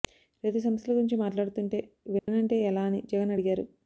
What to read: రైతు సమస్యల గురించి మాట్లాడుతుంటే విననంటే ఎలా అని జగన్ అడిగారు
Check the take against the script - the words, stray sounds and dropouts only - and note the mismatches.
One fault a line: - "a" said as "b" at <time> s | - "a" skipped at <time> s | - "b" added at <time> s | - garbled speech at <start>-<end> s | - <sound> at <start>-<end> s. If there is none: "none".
- dropout at 2.2-2.3 s